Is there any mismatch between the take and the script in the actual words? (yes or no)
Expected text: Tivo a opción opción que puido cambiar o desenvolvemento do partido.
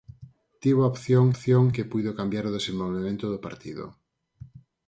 no